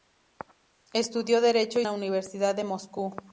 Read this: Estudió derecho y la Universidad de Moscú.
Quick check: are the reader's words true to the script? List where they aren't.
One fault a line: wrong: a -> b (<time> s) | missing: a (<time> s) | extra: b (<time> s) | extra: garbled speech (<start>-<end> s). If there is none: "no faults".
no faults